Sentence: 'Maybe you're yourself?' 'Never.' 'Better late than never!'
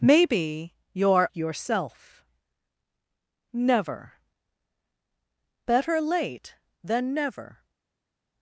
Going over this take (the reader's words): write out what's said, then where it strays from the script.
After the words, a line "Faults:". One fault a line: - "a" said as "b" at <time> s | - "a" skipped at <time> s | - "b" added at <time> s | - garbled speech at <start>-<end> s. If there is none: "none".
'Maybe you're yourself?' 'Never.' 'Better late than never!'
Faults:
none